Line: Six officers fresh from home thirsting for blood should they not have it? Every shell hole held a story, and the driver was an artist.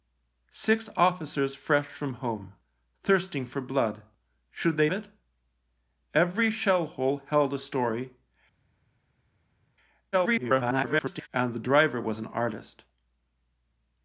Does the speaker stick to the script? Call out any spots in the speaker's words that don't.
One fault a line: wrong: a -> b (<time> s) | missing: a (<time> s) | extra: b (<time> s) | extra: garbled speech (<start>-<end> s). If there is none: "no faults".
missing: not have (4.9 s)
extra: garbled speech (10.1-11.3 s)